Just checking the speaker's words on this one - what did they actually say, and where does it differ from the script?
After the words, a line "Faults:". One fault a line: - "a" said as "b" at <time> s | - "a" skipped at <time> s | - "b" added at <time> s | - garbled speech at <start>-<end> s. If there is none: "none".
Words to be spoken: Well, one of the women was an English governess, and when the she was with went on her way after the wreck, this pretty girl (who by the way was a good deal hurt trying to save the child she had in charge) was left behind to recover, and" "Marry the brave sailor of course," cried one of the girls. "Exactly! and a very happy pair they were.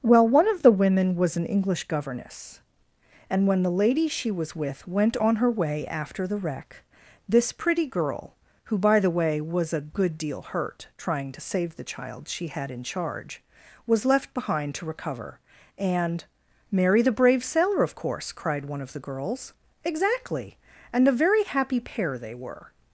Well, one of the women was an English governess, and when the lady she was with went on her way after the wreck, this pretty girl (who by the way was a good deal hurt trying to save the child she had in charge) was left behind to recover, and" "Marry the brave sailor of course," cried one of the girls. "Exactly! and a very happy pair they were.
Faults:
- "lady" added at 3.7 s